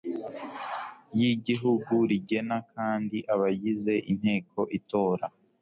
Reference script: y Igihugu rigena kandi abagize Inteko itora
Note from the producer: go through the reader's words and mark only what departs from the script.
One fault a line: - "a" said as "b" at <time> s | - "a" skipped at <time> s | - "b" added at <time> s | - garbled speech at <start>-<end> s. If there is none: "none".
none